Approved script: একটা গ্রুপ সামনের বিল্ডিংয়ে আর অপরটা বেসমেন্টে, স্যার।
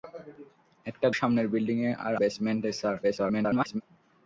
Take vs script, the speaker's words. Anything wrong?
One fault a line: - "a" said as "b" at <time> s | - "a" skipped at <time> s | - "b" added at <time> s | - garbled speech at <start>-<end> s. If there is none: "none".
- "গ্রুপ" skipped at 1.1 s
- "অপরটা" skipped at 2.1 s
- garbled speech at 3.0-3.8 s